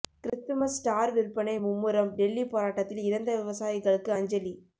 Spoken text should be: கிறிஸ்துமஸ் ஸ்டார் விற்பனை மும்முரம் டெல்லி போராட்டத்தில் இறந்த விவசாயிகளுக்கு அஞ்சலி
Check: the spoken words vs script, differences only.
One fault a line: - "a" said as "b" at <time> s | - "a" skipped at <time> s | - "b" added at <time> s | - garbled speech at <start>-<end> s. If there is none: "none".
none